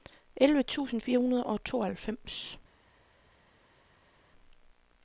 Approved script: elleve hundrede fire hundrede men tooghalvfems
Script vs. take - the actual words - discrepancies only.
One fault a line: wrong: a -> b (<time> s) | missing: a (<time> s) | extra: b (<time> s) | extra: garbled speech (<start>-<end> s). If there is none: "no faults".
wrong: hundrede -> tusind (0.6 s)
wrong: men -> og (1.5 s)